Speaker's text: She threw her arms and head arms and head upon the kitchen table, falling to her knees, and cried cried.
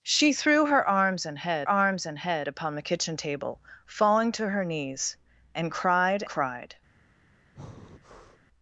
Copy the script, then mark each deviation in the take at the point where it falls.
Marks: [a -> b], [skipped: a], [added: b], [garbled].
She threw her arms and head arms and head upon the kitchen table, falling to her knees, and cried cried.